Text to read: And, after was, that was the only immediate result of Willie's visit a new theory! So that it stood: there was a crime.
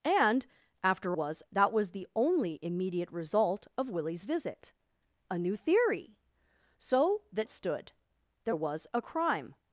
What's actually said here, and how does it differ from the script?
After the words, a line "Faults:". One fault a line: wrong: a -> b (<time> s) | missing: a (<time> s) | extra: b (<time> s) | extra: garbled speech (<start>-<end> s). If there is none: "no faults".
And, after was, that was the only immediate result of Willie's visit a new theory! So that it stood: there was a crime.
Faults:
no faults